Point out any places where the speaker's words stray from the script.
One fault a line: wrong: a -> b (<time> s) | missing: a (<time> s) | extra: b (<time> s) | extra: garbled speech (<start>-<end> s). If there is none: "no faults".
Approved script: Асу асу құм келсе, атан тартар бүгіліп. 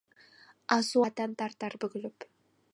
missing: асу құм келсе (1.0 s)